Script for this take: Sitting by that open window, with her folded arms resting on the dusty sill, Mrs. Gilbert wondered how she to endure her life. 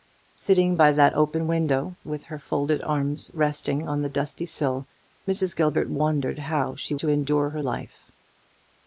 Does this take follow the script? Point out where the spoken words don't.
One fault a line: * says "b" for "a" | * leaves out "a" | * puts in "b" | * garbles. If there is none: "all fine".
all fine